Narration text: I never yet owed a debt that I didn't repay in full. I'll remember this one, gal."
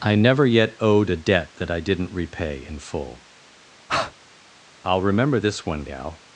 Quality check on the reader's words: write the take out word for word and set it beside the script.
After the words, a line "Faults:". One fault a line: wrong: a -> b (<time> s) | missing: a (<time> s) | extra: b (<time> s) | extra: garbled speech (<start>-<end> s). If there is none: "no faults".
I never yet owed a debt that I didn't repay in full. I'll remember this one, gal."
Faults:
no faults